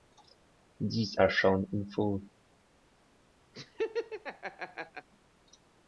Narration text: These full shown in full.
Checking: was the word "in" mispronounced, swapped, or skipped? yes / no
no